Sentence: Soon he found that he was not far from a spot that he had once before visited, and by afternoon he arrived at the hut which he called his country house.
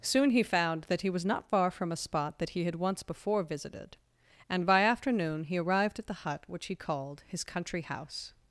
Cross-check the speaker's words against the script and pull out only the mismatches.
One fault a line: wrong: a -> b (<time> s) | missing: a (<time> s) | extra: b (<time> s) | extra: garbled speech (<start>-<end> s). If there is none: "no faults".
no faults